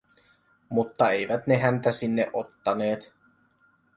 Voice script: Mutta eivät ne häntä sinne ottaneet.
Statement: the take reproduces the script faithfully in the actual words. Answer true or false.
true